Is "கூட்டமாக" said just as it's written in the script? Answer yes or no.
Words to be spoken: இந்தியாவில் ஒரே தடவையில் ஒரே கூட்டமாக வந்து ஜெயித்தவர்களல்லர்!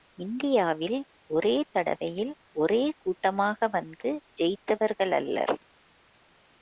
yes